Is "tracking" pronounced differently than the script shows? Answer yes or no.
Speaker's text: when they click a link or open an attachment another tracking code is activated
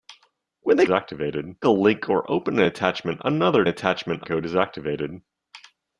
yes